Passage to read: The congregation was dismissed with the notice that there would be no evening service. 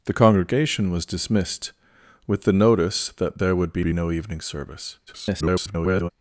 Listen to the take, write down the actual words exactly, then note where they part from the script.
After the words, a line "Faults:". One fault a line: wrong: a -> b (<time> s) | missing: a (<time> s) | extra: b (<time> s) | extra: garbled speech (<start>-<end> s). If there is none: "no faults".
The congregation was dismissed with the notice that there would be be no evening service. [garbled]
Faults:
extra: be (3.8 s)
extra: garbled speech (5.1-6.1 s)